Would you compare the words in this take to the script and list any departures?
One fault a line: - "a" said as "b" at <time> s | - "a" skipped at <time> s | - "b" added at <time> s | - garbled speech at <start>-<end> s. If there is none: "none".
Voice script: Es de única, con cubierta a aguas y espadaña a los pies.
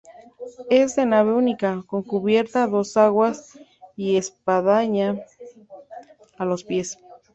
- "nave" added at 1.1 s
- "dos" added at 2.7 s